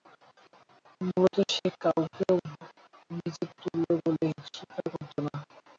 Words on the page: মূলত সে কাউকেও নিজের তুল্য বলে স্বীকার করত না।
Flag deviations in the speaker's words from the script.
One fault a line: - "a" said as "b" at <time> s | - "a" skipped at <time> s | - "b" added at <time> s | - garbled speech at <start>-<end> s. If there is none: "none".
none